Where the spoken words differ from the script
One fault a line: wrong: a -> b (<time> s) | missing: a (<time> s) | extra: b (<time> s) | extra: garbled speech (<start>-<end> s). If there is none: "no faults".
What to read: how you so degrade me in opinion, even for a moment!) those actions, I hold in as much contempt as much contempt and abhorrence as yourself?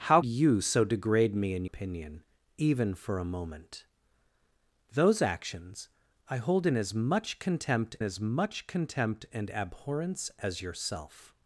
no faults